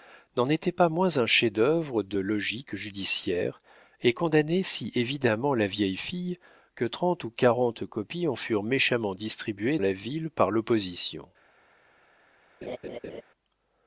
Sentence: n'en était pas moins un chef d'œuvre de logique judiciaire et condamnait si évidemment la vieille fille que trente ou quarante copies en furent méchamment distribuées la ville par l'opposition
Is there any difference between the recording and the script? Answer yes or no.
no